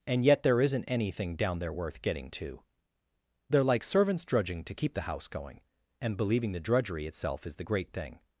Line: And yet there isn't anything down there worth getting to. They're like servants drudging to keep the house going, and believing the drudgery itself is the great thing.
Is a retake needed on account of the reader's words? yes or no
no